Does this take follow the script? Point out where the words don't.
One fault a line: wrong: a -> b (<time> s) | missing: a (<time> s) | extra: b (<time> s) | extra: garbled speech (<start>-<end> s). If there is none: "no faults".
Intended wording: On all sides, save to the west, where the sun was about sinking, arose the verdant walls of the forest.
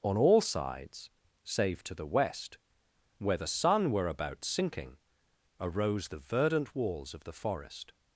wrong: was -> were (3.9 s)